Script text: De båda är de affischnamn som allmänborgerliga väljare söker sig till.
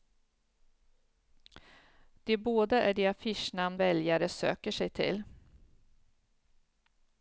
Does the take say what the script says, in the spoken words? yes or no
no